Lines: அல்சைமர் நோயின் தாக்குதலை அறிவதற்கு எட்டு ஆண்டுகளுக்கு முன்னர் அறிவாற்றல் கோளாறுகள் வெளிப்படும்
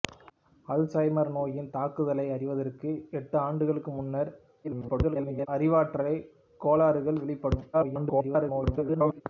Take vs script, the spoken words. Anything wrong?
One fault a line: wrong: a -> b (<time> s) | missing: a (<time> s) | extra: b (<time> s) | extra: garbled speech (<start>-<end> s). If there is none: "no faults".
extra: garbled speech (4.6-5.5 s)
extra: garbled speech (7.7-9.2 s)